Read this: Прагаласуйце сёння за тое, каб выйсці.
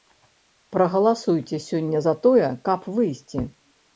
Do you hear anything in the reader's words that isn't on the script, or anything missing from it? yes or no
no